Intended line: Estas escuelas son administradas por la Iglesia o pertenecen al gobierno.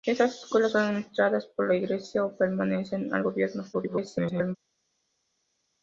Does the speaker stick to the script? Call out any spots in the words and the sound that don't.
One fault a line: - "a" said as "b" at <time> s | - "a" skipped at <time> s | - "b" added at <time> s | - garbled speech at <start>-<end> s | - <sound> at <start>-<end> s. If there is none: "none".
- garbled speech at 3.7-4.6 s